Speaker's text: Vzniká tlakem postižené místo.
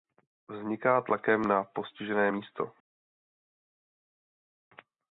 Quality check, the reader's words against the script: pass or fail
fail